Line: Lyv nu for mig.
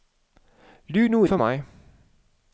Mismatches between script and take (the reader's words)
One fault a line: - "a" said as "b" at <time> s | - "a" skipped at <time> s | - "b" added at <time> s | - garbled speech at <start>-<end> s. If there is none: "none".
none